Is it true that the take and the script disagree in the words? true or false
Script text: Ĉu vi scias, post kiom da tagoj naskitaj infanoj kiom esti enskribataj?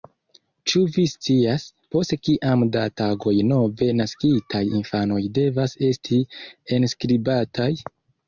true